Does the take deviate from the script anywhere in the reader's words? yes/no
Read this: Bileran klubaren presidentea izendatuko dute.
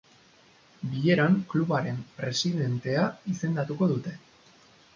no